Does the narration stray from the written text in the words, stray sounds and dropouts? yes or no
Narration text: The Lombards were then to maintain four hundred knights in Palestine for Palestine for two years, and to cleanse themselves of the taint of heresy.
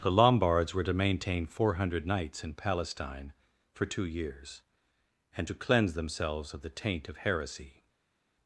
yes